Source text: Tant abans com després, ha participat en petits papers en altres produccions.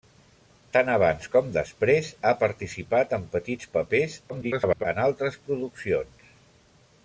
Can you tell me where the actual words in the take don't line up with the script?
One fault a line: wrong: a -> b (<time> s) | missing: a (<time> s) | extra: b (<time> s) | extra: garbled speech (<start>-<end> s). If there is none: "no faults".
extra: garbled speech (4.3-4.9 s)